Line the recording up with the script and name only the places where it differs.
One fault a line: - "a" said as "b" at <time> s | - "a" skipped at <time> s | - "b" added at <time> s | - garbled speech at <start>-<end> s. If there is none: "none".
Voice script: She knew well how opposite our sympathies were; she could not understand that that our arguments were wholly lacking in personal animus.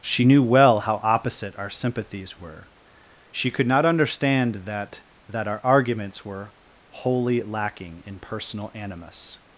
none